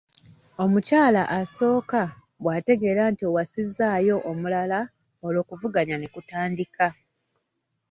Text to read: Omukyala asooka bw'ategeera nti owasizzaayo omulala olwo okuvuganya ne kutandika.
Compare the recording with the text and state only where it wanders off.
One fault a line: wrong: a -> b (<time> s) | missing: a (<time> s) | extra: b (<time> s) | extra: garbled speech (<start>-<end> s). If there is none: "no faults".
no faults